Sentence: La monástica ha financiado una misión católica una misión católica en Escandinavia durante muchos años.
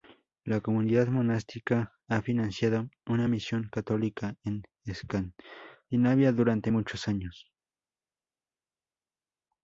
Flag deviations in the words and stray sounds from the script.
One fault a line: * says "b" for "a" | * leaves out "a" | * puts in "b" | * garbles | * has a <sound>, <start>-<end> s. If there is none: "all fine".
* puts in "comunidad"
* leaves out "una misión católica"